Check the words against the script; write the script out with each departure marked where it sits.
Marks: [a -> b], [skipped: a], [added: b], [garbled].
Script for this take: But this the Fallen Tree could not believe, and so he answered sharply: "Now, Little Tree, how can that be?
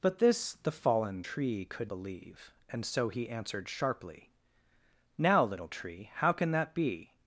But this the Fallen Tree could [skipped: not] believe, and so he answered sharply: "Now, Little Tree, how can that be?